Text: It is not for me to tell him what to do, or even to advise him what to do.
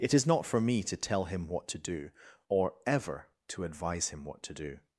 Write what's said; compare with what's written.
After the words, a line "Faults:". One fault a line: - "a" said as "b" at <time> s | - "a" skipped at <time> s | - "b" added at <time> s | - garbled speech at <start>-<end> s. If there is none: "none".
It is not for me to tell him what to do, or ever to advise him what to do.
Faults:
- "even" said as "ever" at 2.9 s